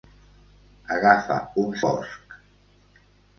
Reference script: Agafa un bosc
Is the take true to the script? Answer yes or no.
yes